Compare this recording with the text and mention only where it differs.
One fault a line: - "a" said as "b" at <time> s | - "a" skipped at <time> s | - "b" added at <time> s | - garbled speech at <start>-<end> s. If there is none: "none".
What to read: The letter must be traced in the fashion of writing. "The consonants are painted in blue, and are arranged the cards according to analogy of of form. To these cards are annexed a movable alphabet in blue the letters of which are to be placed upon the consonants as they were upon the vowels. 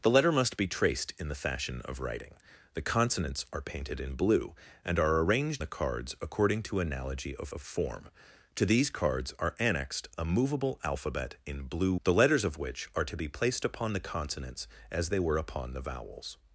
none